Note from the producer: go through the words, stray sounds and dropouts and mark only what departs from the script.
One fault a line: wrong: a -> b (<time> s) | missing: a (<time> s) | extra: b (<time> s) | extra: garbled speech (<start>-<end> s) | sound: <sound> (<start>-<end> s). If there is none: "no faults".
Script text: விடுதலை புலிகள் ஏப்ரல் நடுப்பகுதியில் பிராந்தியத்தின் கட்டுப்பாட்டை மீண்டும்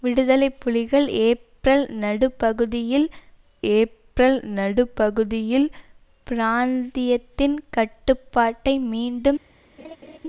extra: ஏப்ரல் நடுப்பகுதியில் (3.7 s)
sound: laugh (9.8-10.2 s)